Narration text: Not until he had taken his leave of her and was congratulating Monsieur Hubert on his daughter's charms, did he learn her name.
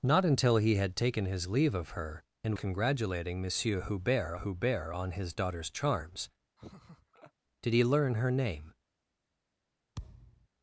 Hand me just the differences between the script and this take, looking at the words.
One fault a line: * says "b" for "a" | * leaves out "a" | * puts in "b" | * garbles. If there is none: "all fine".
* leaves out "was"
* puts in "Hubert"